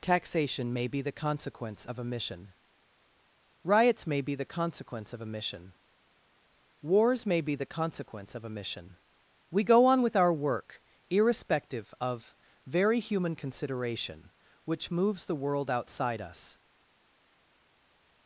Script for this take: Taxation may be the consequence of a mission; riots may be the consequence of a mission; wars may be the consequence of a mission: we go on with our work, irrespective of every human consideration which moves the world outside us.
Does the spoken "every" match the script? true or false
false